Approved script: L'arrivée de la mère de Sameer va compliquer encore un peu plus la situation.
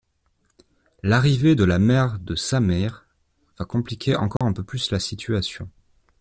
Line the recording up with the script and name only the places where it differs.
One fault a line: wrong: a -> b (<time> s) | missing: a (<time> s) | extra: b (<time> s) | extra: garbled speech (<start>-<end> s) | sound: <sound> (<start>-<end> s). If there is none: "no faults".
sound: dropout (4.4-4.4 s)